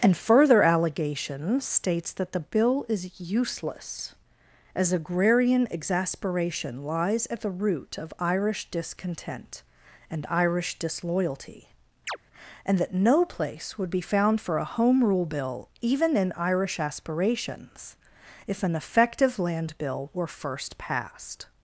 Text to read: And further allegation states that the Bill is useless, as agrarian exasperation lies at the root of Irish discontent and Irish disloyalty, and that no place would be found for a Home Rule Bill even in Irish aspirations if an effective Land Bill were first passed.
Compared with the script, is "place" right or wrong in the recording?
right